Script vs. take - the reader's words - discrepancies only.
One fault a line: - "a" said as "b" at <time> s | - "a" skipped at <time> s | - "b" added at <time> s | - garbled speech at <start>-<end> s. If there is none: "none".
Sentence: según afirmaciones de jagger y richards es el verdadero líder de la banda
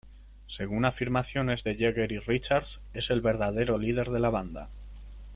none